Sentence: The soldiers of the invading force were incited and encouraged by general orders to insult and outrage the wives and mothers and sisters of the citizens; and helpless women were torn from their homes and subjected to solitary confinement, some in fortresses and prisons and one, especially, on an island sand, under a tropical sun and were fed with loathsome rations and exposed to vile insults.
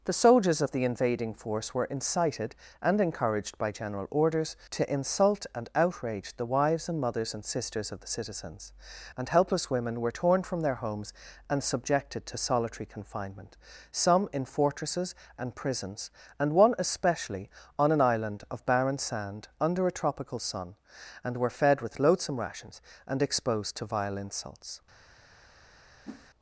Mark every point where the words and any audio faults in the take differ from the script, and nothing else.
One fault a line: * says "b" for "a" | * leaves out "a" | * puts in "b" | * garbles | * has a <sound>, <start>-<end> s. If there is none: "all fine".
* puts in "of barren"
* has a whoosh, 26.0-26.3 s